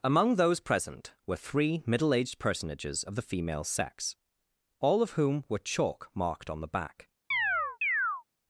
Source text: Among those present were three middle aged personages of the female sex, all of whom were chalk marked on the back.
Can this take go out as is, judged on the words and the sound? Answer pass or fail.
fail